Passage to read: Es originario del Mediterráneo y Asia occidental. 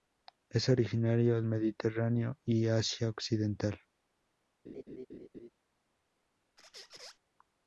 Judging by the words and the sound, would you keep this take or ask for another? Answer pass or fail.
fail